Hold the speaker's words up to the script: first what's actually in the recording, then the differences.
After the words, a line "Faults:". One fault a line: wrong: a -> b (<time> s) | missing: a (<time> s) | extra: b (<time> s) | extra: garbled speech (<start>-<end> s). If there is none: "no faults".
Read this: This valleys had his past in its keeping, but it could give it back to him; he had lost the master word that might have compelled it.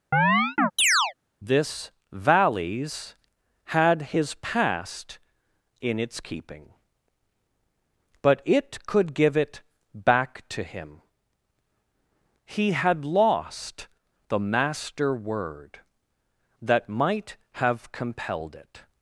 This valleys had his past in its keeping, but it could give it back to him; he had lost the master word that might have compelled it.
Faults:
no faults